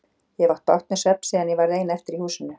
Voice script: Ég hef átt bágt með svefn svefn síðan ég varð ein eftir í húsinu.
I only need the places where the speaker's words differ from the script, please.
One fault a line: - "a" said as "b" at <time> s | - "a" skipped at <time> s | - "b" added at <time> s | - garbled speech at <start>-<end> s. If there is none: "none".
- "svefn" skipped at 1.3 s